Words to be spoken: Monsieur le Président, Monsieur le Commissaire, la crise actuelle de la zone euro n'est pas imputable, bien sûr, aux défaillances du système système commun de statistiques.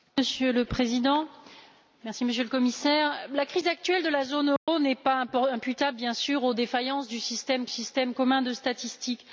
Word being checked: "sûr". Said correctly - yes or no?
yes